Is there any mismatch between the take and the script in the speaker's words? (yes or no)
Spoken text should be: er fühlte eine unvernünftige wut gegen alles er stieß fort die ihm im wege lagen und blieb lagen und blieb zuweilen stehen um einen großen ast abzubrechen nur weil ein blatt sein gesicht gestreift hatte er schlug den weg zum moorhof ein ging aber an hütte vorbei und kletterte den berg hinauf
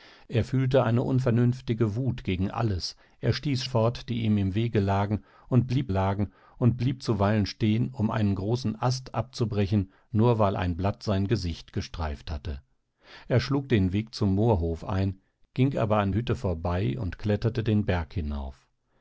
no